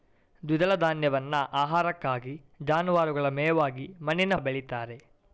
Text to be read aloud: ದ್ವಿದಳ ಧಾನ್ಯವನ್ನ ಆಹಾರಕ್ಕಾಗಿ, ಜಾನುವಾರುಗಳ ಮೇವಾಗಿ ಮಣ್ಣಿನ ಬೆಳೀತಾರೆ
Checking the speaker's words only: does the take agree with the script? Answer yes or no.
yes